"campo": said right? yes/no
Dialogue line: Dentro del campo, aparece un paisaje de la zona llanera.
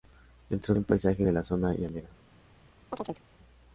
no